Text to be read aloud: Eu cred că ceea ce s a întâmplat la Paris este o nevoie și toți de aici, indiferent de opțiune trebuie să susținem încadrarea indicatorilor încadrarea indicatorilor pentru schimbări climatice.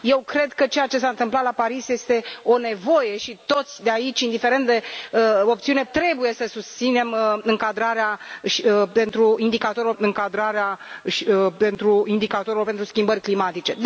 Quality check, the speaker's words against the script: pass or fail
pass